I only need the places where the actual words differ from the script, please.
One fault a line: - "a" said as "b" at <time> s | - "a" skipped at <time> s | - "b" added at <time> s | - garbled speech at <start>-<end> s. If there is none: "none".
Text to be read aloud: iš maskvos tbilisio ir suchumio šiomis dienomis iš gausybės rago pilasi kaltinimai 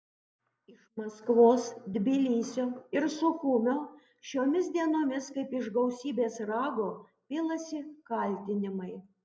- "kaip" added at 5.4 s